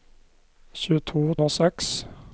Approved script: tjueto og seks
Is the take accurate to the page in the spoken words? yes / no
yes